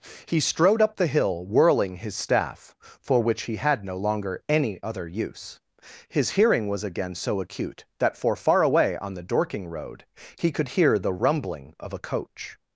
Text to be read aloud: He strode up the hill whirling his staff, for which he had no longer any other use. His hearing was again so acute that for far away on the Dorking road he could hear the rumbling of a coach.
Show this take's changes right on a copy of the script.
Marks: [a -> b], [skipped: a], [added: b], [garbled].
He strode up the hill whirling his staff, for which he had no longer any other use. His hearing was again so acute that for far away on the Dorking road he could hear the rumbling of a coach.